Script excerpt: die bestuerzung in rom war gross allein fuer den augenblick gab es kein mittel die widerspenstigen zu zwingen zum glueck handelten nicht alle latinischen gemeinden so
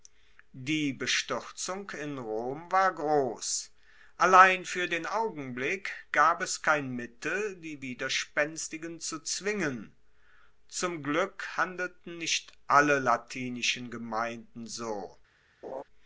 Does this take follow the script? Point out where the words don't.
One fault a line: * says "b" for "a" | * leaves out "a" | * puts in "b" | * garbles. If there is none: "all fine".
all fine